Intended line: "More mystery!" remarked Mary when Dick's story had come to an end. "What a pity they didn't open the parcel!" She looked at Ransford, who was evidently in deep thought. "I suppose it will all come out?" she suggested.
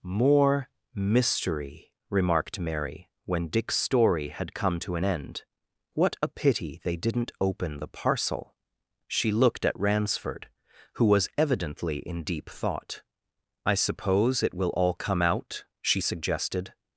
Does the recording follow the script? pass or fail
pass